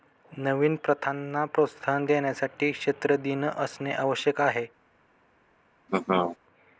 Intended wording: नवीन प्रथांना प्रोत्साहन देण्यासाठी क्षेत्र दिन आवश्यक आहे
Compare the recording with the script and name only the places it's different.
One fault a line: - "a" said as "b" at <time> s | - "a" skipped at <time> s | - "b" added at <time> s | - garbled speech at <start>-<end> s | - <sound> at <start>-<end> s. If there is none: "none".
- "असणे" added at 3.5 s
- laugh at 5.9-6.4 s